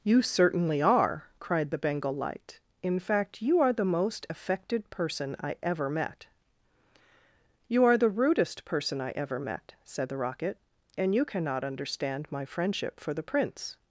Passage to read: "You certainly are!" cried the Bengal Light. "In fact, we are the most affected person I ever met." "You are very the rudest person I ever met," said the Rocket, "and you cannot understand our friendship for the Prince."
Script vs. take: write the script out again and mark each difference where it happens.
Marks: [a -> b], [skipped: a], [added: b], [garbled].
"You certainly are!" cried the Bengal Light. "In fact, [we -> you] are the most affected person I ever met." "You are [skipped: very] the rudest person I ever met," said the Rocket, "and you cannot understand [our -> my] friendship for the Prince."